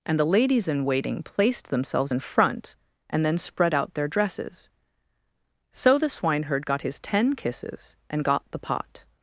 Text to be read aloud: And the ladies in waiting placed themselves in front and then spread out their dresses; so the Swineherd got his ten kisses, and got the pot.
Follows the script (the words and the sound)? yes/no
yes